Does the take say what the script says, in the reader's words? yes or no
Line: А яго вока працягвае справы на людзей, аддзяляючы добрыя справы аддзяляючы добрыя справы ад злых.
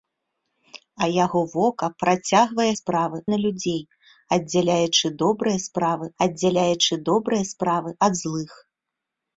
yes